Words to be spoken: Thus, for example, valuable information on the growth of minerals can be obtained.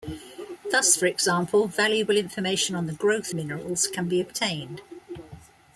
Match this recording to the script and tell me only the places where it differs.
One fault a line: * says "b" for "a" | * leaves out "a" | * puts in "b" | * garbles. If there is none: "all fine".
* leaves out "of"